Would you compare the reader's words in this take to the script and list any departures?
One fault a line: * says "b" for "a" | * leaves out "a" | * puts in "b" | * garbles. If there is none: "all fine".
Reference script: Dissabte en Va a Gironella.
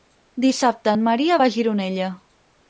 * puts in "Maria"